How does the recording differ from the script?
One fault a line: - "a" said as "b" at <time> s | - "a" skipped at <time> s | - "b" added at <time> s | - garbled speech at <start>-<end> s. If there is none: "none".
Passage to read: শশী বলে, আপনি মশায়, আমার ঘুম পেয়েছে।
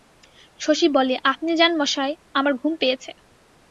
- "যান" added at 1.6 s